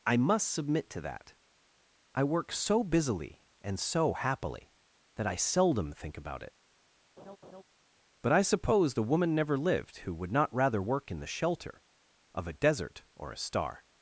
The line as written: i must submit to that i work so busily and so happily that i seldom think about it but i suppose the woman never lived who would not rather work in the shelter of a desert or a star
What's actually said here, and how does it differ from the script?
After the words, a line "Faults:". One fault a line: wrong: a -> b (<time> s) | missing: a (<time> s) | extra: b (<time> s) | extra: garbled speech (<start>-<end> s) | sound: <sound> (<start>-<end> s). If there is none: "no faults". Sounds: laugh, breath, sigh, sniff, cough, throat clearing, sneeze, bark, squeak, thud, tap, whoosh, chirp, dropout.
i must submit to that i work so busily and so happily that i seldom think about it but i suppose the woman never lived who would not rather work in the shelter of a desert or a star
Faults:
sound: laugh (7.2-7.6 s)